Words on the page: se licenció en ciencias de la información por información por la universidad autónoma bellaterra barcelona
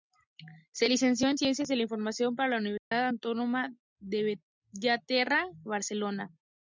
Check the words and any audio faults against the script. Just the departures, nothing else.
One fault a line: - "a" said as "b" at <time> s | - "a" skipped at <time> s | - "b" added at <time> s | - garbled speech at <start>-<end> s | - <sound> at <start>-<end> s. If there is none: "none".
- "información por" skipped at 2.5 s
- dropout at 2.8-2.9 s
- "de" added at 4.0 s